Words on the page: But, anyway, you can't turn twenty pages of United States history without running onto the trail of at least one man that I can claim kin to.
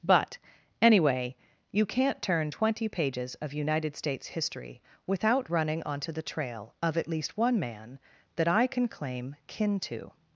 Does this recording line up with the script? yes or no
yes